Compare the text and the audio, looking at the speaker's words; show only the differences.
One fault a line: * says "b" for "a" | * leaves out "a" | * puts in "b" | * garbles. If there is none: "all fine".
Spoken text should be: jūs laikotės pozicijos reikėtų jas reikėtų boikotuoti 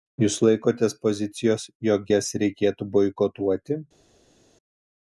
* says "jog" for "reikėtų"